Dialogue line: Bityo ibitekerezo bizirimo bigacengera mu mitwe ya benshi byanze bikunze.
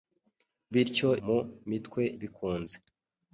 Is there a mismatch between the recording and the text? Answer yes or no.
yes